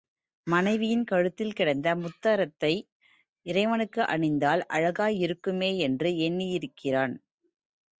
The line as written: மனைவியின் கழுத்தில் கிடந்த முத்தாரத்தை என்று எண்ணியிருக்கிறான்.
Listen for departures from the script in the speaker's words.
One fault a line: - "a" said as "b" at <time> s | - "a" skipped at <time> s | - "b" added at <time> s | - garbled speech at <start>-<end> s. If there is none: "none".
- "இறைவனுக்கு அணிந்தால் அழகாயிருக்குமே" added at 3.5 s